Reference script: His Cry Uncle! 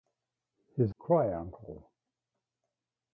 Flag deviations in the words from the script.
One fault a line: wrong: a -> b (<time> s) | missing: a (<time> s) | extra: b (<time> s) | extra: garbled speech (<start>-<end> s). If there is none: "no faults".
no faults